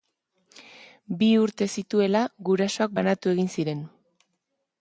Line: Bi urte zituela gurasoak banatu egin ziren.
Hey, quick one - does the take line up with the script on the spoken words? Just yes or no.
yes